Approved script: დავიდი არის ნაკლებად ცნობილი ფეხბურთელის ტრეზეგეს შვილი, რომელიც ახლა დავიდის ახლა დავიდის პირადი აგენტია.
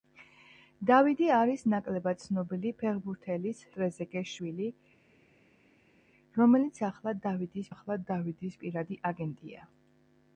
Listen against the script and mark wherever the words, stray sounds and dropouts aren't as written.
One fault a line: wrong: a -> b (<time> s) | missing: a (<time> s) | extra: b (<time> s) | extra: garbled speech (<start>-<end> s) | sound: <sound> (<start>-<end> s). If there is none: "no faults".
no faults